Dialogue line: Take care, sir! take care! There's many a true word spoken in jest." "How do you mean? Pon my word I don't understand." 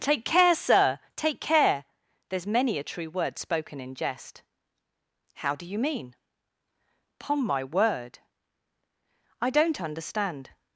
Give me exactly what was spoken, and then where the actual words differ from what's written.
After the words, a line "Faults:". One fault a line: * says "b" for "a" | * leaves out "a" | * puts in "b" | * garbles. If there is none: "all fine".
Take care, sir! take care! There's many a true word spoken in jest." "How do you mean? Pon my word I don't understand."
Faults:
all fine